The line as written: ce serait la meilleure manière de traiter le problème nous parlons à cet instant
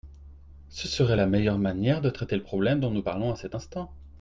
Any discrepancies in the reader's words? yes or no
yes